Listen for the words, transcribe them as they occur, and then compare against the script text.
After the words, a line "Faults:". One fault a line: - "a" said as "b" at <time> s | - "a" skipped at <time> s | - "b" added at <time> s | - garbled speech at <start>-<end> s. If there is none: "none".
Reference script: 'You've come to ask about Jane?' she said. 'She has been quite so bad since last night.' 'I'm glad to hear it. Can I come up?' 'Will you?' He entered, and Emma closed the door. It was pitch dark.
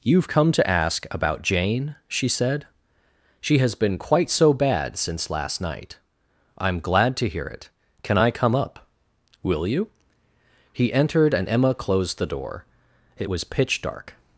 'You've come to ask about Jane?' she said. 'She has been quite so bad since last night.' 'I'm glad to hear it. Can I come up?' 'Will you?' He entered, and Emma closed the door. It was pitch dark.
Faults:
none